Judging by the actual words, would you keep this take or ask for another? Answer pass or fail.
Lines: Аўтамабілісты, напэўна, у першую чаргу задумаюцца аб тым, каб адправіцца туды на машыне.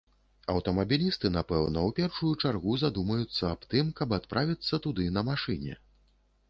pass